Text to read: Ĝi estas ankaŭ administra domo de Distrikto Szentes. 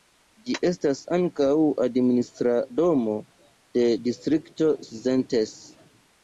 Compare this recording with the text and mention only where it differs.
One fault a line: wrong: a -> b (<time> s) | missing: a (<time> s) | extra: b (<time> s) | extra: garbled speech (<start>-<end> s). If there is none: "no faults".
no faults